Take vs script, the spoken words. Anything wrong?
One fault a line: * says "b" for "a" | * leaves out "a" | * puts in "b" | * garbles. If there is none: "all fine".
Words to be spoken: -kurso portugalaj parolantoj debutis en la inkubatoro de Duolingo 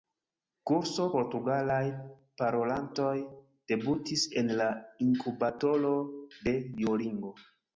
all fine